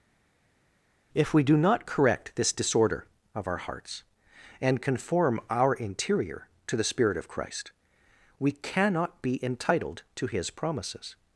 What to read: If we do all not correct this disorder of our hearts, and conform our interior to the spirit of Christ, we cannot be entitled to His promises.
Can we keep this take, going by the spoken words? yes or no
no